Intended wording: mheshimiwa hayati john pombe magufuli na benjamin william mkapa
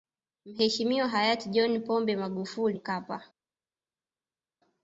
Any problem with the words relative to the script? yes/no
yes